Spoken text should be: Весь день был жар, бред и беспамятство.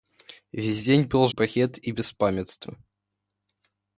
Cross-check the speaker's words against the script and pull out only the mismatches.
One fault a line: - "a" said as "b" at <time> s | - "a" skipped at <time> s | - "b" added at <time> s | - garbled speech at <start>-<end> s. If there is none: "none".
- "жар" skipped at 1.3 s